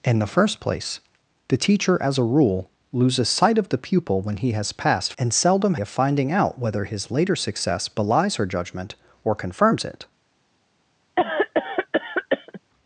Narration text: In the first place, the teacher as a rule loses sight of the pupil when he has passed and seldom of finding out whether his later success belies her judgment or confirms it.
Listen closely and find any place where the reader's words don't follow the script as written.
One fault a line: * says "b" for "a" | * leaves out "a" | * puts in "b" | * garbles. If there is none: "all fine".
all fine